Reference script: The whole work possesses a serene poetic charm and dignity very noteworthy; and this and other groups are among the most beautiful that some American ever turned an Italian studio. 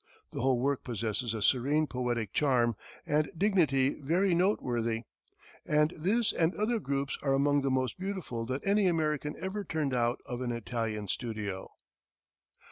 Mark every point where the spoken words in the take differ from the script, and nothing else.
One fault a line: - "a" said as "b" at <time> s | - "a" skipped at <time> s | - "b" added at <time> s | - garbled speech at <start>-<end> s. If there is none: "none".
- "some" said as "any" at 8.6 s
- "out of" added at 9.9 s